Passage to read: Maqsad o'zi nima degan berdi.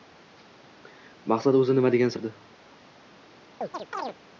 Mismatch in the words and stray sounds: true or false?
true